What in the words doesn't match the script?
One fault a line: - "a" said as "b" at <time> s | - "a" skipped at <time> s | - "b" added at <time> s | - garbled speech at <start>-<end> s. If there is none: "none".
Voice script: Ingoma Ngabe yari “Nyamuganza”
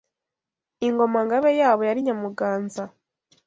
- "yabo" added at 1.6 s